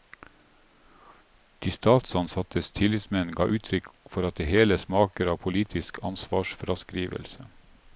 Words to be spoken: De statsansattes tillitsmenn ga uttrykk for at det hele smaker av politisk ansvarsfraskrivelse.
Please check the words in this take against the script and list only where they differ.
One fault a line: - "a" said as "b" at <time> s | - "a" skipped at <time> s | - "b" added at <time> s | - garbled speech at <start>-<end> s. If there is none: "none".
none